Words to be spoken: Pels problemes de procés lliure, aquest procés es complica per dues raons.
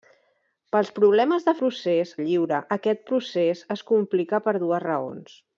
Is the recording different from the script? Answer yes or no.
no